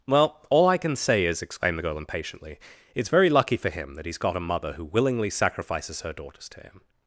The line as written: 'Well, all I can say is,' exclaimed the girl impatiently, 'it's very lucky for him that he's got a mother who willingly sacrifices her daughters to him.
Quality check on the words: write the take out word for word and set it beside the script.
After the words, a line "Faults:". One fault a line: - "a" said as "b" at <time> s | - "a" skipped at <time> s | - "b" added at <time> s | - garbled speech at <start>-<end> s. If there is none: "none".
'Well, all I can say is,' exclaimed the girl impatiently, 'it's very lucky for him that he's got a mother who willingly sacrifices her daughters to him.
Faults:
none